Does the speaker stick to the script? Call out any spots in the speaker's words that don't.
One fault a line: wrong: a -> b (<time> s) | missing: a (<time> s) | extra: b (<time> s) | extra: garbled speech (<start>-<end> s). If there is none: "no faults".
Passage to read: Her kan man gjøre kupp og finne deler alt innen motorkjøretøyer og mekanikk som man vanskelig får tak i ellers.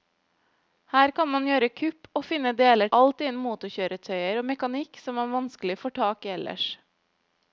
no faults